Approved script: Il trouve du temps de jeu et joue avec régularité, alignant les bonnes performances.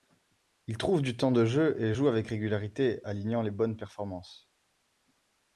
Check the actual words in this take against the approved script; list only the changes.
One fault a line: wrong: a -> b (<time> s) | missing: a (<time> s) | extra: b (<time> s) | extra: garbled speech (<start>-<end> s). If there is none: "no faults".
no faults